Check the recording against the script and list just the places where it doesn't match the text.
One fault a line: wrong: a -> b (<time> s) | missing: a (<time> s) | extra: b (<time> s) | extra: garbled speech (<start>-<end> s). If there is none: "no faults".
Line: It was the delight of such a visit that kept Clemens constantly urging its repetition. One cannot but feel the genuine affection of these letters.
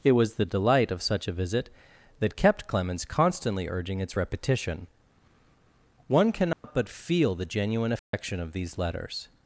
no faults